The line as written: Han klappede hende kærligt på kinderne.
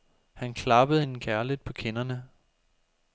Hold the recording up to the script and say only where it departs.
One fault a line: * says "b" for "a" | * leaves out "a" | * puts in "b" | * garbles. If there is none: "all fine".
all fine